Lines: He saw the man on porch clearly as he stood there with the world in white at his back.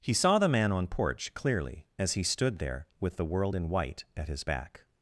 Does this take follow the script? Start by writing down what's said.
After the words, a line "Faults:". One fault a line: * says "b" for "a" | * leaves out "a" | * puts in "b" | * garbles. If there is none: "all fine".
He saw the man on porch clearly as he stood there with the world in white at his back.
Faults:
all fine